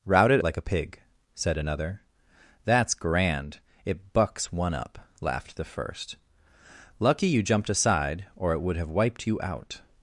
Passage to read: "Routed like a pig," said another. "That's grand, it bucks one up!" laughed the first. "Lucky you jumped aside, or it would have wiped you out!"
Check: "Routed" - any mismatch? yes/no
no